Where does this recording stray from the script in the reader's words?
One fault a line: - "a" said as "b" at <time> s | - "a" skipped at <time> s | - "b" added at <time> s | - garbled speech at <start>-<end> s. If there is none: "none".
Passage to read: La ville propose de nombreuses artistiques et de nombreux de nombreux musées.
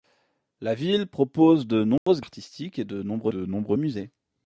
none